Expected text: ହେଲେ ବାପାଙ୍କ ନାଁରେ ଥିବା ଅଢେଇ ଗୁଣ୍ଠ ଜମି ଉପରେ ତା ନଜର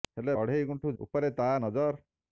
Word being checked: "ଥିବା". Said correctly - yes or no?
no